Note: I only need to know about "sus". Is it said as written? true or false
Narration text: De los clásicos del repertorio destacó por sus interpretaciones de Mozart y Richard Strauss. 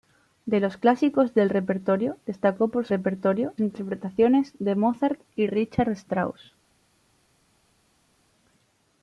false